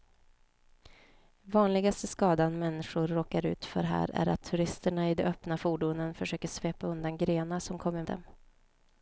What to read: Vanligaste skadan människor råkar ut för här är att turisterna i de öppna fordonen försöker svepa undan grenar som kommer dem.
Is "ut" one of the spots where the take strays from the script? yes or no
no